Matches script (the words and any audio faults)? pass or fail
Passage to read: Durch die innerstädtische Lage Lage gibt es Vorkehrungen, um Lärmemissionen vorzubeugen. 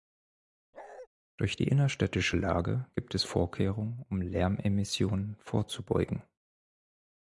fail